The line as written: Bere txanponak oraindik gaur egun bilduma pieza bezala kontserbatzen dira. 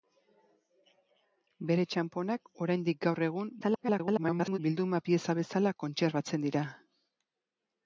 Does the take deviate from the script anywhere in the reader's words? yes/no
yes